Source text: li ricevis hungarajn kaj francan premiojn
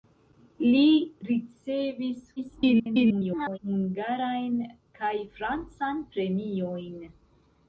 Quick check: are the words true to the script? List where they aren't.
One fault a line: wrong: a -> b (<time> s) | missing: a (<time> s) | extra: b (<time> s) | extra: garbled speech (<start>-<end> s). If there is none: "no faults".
extra: garbled speech (2.4-3.6 s)